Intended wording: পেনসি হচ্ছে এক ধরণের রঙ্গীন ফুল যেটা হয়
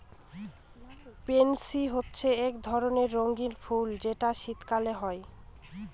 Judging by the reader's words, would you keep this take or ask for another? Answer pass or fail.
fail